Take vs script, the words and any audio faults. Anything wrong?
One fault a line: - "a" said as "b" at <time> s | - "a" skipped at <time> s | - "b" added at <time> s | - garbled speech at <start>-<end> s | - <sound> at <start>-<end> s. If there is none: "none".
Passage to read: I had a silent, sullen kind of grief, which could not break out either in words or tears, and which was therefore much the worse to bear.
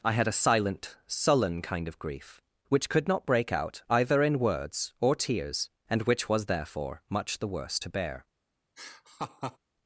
- laugh at 8.8-9.6 s